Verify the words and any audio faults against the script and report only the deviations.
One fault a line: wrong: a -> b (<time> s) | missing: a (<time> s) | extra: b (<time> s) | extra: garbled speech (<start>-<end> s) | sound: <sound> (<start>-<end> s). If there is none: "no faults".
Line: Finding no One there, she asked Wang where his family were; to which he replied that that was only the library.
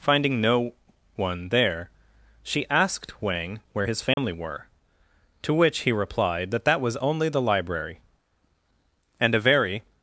sound: dropout (4.1-4.2 s)
extra: And a very (9.2 s)